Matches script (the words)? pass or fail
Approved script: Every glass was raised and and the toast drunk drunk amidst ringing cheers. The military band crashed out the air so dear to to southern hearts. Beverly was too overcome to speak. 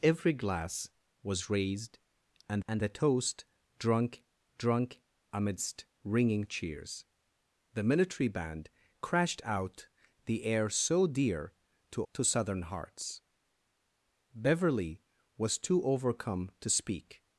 pass